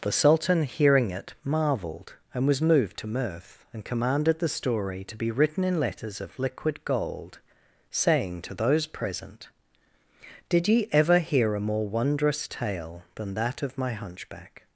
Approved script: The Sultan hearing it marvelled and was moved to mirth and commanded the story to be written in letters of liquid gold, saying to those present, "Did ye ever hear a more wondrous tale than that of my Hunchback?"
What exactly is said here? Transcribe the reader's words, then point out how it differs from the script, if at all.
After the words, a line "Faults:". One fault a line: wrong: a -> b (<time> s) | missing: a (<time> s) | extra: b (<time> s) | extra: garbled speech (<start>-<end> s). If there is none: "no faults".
The Sultan hearing it marvelled and was moved to mirth and commanded the story to be written in letters of liquid gold, saying to those present, "Did ye ever hear a more wondrous tale than that of my Hunchback?"
Faults:
no faults